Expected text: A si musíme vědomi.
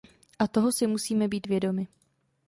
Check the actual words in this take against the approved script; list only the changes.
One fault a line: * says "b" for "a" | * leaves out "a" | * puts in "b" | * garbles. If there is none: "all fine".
* puts in "toho"
* puts in "být"